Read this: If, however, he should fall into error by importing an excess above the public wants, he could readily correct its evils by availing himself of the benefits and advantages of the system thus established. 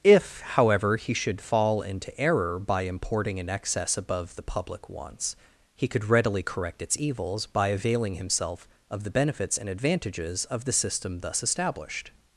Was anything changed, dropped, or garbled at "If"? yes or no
no